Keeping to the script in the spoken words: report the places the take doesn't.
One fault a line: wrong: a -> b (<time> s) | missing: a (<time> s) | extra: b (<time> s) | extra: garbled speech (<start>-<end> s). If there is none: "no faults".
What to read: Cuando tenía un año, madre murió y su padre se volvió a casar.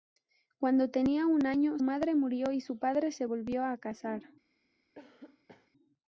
no faults